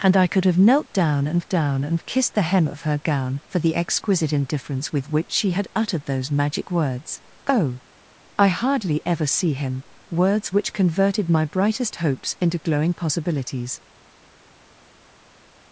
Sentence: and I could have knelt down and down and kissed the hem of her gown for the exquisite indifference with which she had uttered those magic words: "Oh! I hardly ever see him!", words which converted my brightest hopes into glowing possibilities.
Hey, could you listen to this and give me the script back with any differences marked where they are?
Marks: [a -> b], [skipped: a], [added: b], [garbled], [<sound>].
and I could have knelt down and down and kissed the hem of her gown for the exquisite indifference with which she had uttered those magic words: "Oh! I hardly ever see him!", words which converted my brightest hopes into glowing possibilities.